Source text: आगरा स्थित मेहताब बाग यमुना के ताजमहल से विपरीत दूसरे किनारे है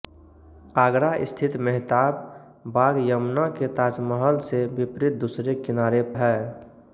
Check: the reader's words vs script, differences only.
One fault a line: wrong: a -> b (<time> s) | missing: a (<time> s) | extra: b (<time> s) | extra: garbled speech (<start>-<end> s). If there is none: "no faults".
no faults